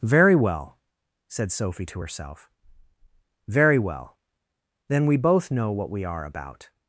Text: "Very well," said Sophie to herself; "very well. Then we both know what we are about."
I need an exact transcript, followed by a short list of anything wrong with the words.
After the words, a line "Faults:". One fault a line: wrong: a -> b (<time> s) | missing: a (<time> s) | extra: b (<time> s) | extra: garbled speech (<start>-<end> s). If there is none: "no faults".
"Very well," said Sophie to herself; "very well. Then we both know what we are about."
Faults:
no faults